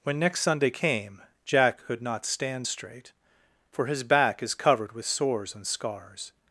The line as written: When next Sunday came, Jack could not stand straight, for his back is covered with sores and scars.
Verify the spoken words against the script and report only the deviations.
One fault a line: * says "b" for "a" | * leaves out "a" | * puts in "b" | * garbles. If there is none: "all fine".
all fine